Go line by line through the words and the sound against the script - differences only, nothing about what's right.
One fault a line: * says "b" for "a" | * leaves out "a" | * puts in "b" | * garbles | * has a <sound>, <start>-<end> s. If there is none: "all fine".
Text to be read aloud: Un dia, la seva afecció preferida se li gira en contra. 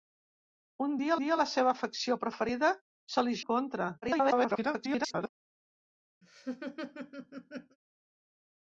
* puts in "dia"
* leaves out "gira"
* garbles
* has a laugh, 6.2-7.8 s